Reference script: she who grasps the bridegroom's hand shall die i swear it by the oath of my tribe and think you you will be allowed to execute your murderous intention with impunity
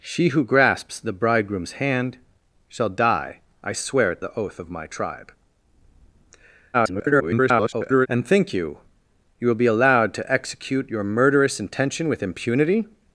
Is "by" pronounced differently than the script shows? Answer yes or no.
yes